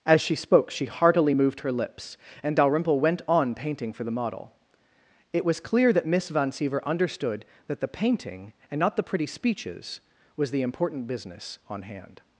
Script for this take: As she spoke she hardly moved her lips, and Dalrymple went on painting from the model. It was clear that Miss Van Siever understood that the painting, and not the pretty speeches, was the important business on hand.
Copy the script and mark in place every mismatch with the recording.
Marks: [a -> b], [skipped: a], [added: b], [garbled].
As she spoke she [hardly -> heartily] moved her lips, and Dalrymple went on painting [from -> for] the model. It was clear that Miss Van Siever understood that the painting, and not the pretty speeches, was the important business on hand.